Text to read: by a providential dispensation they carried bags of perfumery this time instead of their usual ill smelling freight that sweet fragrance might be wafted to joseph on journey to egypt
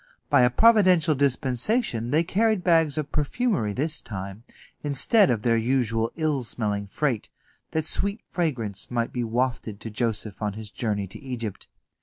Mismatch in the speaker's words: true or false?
true